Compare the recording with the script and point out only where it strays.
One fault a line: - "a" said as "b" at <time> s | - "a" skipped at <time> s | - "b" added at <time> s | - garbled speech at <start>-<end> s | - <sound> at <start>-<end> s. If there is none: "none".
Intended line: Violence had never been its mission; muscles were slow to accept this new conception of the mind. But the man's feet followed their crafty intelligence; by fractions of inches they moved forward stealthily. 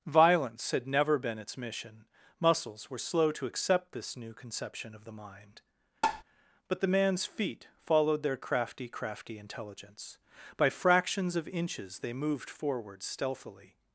- tap at 6.0-6.2 s
- "crafty" added at 8.9 s